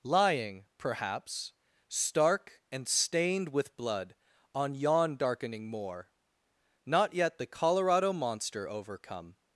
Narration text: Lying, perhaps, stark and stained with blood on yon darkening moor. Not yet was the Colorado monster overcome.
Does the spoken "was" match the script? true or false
false